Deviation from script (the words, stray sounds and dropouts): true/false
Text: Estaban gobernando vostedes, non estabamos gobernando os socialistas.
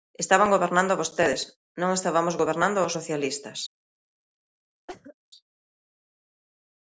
true